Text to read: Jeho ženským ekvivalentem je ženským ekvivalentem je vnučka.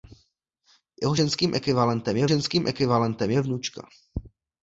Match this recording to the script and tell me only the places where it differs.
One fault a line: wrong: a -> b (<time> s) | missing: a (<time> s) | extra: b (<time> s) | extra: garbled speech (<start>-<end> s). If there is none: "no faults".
no faults